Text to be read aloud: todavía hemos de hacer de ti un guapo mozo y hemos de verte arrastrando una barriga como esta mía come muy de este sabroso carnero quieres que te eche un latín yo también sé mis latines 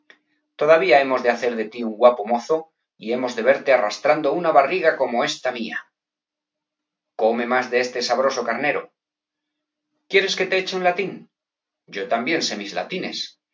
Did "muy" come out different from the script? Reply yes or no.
yes